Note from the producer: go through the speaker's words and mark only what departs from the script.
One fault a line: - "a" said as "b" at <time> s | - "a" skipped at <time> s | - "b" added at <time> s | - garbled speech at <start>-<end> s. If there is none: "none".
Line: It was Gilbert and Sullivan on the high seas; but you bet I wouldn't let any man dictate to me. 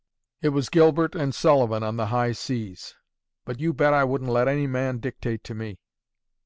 none